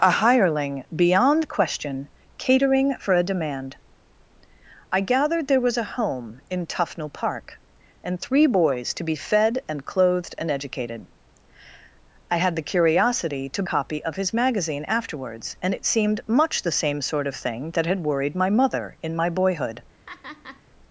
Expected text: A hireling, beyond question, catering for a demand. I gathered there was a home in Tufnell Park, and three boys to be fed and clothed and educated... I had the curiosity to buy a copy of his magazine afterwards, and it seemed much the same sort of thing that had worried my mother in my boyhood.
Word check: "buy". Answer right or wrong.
wrong